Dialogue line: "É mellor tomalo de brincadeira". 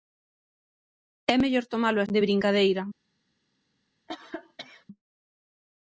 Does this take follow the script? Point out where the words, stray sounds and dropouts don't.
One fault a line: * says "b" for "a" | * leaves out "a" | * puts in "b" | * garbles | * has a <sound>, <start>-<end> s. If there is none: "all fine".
* has a cough, 4.1-4.9 s